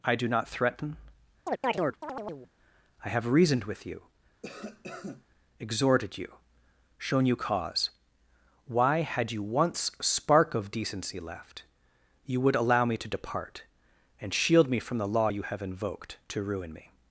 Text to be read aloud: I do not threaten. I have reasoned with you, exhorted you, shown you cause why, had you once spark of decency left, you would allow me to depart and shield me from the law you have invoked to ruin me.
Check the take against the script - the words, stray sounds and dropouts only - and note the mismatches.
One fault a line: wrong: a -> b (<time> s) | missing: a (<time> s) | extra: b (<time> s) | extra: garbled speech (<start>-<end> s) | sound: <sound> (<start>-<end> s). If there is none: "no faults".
sound: chirp (1.5-2.5 s)
sound: cough (4.4-5.3 s)